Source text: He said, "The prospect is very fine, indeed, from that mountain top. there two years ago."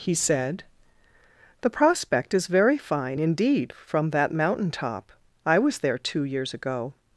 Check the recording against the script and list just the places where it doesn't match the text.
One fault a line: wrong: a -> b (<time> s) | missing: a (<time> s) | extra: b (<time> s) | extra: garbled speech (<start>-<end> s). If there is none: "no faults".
extra: I was (5.4 s)